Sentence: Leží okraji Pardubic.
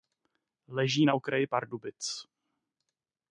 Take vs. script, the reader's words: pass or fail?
fail